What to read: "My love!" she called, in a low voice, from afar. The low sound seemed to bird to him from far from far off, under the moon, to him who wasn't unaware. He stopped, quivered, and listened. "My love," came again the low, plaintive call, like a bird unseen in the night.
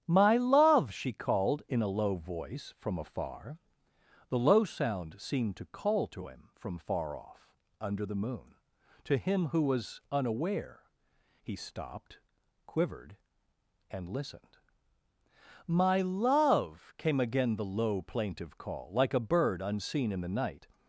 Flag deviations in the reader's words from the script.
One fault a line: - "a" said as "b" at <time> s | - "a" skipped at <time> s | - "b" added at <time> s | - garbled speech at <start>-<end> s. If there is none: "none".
- "bird" said as "call" at 5.7 s
- "from far" skipped at 7.2 s
- "wasn't" said as "was" at 9.6 s